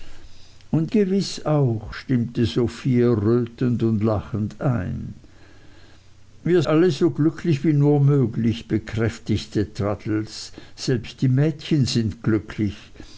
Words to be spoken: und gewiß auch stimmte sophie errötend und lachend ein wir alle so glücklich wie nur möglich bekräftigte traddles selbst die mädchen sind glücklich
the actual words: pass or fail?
pass